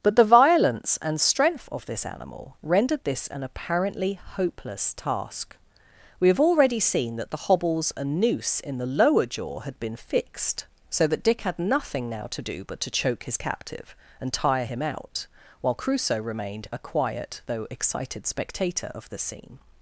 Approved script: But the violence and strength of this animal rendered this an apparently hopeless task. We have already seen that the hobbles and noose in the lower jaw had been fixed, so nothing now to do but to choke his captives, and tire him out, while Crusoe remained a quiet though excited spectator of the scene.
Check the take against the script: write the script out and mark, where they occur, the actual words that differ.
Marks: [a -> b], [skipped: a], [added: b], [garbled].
But the violence and strength of this animal rendered this an apparently hopeless task. We have already seen that the hobbles and noose in the lower jaw had been fixed, so [added: that Dick had] nothing now to do but to choke his [captives, -> captive] and tire him out, while Crusoe remained a quiet though excited spectator of the scene.